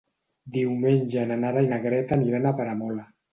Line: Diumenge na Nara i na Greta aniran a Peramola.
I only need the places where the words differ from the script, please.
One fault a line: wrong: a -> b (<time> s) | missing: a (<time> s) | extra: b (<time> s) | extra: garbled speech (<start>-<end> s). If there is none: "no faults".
no faults